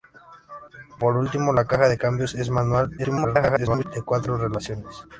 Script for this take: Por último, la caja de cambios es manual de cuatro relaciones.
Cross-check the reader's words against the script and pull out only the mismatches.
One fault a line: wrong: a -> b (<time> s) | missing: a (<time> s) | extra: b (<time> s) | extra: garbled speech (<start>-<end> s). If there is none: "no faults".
extra: garbled speech (3.0-3.8 s)